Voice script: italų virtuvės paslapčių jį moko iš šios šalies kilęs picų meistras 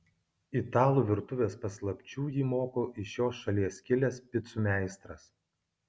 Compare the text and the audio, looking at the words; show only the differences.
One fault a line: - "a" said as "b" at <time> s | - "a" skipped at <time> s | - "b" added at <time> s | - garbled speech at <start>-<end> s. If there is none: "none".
none